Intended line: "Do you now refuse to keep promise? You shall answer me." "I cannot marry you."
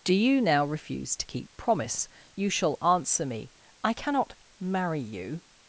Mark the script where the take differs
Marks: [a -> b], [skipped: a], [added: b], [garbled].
"Do you now refuse to keep promise? You shall answer me." "I cannot marry you."